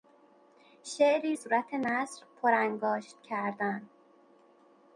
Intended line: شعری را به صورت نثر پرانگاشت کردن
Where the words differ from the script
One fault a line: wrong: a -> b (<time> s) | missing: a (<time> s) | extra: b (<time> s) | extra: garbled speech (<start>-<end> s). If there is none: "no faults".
missing: را به (1.4 s)